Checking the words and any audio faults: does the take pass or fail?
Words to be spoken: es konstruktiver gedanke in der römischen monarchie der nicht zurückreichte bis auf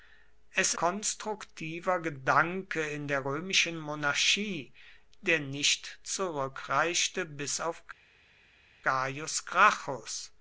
pass